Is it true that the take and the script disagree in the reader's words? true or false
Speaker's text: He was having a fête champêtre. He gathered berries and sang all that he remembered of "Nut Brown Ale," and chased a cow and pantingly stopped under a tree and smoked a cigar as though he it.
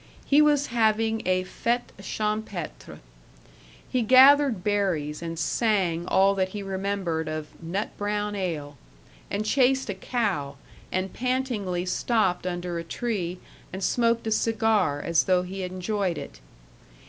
true